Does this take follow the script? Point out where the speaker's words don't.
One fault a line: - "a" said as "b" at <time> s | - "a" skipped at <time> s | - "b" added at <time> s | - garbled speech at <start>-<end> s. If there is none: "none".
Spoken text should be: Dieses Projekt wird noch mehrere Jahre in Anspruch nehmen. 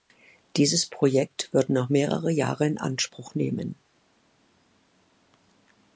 none